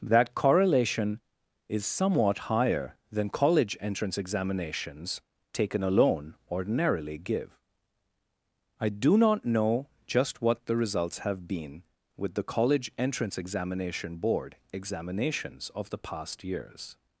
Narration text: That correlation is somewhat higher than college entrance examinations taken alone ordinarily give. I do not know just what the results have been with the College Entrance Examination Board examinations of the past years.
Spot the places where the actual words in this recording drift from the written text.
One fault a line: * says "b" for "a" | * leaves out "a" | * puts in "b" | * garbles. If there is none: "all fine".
all fine